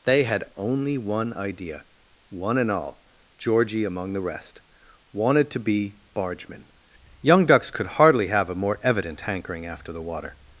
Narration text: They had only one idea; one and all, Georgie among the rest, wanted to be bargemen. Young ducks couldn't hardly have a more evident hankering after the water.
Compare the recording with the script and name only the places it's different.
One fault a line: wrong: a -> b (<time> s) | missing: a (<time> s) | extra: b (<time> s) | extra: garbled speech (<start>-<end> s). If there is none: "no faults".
wrong: couldn't -> could (7.7 s)